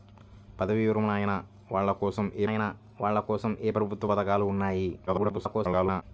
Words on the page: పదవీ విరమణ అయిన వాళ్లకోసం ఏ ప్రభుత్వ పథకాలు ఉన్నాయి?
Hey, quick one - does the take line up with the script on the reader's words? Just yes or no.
no